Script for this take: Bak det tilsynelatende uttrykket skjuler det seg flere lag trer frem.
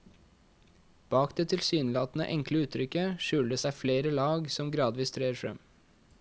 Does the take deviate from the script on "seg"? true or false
false